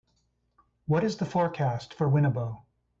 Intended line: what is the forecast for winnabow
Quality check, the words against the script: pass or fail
pass